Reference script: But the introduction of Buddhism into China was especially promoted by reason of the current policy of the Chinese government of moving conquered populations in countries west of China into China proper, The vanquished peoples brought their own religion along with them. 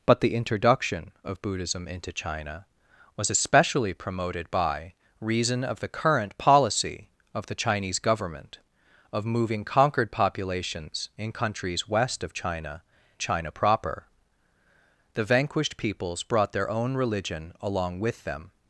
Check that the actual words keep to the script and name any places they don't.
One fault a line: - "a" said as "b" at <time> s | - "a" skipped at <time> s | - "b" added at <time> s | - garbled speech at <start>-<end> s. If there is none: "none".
- "into" skipped at 12.8 s